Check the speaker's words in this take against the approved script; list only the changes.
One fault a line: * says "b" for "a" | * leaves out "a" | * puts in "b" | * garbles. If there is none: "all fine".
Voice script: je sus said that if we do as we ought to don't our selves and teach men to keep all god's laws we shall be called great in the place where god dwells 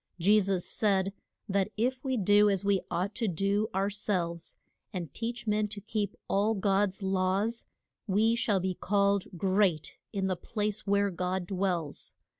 * says "do" for "don't"